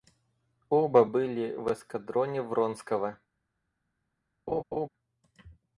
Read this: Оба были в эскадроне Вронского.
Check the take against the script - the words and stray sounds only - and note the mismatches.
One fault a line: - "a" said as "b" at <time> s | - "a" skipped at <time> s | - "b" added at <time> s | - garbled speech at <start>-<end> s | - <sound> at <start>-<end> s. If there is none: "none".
- laugh at 4.5-4.9 s